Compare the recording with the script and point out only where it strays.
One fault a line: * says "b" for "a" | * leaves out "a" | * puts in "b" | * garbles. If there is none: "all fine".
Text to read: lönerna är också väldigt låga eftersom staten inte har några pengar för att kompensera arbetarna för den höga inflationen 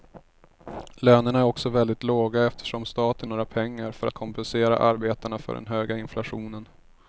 * leaves out "inte har"